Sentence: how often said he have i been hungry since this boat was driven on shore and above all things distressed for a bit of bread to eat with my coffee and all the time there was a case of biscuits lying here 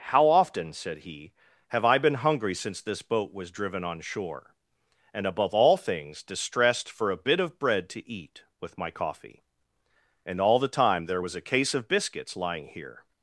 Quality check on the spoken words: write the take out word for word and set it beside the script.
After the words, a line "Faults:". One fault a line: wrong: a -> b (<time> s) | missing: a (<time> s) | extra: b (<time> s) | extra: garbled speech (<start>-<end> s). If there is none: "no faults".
how often said he have i been hungry since this boat was driven on shore and above all things distressed for a bit of bread to eat with my coffee and all the time there was a case of biscuits lying here
Faults:
no faults